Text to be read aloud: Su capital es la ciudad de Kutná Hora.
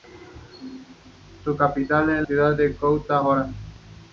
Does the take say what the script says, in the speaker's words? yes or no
no